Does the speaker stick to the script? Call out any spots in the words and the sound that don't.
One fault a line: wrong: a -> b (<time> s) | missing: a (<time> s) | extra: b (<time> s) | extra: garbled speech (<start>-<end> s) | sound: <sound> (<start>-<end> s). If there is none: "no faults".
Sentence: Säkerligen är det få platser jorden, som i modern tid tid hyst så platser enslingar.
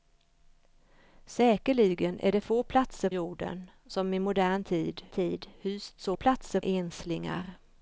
no faults